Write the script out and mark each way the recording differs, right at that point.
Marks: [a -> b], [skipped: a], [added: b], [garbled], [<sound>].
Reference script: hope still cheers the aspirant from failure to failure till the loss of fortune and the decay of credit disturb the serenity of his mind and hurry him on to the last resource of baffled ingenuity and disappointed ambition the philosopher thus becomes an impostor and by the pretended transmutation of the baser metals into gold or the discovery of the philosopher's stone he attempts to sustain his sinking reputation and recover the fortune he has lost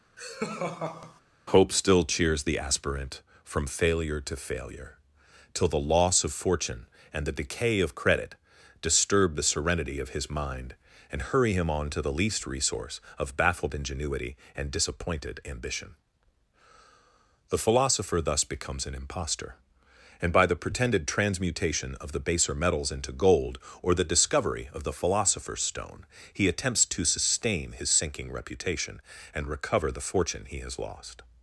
[laugh] hope still cheers the aspirant from failure to failure till the loss of fortune and the decay of credit disturb the serenity of his mind and hurry him on to the [last -> least] resource of baffled ingenuity and disappointed ambition the philosopher thus becomes an impostor and by the pretended transmutation of the baser metals into gold or the discovery of the philosopher's stone he attempts to sustain his sinking reputation and recover the fortune he has lost